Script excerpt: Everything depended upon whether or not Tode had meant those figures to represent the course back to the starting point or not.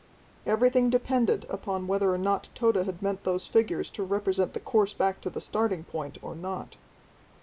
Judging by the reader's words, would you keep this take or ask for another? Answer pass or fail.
pass